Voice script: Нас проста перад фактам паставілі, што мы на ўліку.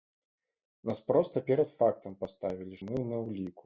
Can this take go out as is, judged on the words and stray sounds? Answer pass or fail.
fail